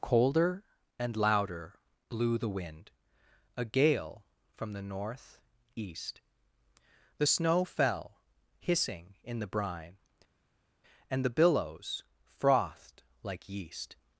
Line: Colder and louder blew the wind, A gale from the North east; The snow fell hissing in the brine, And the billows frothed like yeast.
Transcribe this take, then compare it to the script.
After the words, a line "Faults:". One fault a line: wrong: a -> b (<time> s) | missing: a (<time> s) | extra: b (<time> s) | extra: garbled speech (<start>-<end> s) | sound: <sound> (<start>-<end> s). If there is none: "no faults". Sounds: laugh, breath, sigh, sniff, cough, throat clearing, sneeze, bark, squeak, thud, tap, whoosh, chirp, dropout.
Colder and louder blew the wind, A gale from the North east; The snow fell hissing in the brine, And the billows frothed like yeast.
Faults:
no faults